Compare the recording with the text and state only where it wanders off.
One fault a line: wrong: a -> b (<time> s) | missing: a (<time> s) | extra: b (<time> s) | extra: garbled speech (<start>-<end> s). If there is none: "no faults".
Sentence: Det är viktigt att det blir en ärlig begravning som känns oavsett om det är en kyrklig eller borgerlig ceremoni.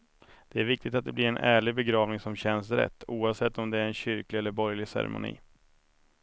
extra: rätt (2.7 s)